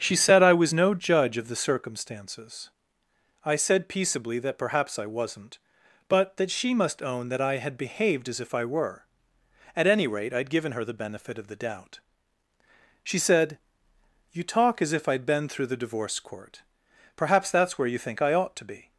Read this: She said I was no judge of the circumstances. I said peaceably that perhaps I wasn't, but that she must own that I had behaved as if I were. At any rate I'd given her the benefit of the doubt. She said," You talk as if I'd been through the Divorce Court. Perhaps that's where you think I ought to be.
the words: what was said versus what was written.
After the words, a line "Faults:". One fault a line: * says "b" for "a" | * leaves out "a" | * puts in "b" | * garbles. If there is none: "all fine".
She said I was no judge of the circumstances. I said peaceably that perhaps I wasn't, but that she must own that I had behaved as if I were. At any rate I'd given her the benefit of the doubt. She said," You talk as if I'd been through the Divorce Court. Perhaps that's where you think I ought to be.
Faults:
all fine